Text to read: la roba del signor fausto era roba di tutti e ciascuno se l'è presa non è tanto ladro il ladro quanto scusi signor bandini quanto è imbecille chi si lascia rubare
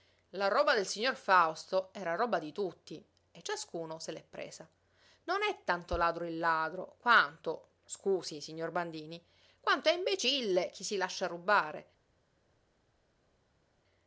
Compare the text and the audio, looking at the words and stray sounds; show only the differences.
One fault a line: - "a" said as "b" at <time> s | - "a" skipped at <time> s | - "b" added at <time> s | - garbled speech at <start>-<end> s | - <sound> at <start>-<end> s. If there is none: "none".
none